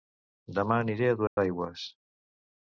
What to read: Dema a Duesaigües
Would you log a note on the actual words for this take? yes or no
yes